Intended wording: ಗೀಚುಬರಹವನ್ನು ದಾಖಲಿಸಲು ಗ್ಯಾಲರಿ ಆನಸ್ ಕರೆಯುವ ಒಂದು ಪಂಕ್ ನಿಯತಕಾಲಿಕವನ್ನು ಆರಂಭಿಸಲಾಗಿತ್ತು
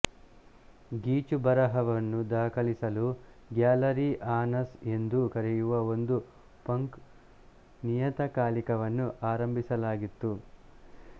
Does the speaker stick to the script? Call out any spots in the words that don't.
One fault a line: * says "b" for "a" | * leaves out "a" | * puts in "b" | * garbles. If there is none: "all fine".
* puts in "ಎಂದು"